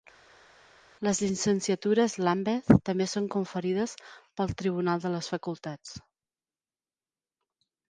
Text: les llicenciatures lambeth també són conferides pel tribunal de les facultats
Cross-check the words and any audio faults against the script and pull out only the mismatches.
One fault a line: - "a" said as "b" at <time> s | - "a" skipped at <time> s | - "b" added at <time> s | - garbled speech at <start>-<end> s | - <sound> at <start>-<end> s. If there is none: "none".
none